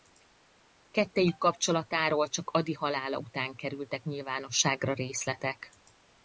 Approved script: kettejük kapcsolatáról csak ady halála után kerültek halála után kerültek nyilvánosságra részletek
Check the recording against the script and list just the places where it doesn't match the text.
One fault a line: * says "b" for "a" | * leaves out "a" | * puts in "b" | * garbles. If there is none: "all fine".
* leaves out "halála után kerültek"